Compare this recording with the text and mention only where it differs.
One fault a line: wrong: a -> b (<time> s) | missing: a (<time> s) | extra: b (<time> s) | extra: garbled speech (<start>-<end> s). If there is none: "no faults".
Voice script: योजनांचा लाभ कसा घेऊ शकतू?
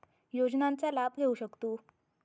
missing: कसा (1.1 s)